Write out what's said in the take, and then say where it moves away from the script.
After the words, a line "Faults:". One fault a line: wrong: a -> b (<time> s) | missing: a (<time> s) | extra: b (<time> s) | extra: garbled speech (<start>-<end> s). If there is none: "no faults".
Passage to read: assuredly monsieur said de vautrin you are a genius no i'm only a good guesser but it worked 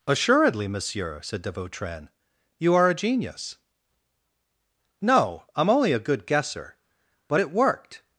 assuredly monsieur said de vautrin you are a genius no i'm only a good guesser but it worked
Faults:
no faults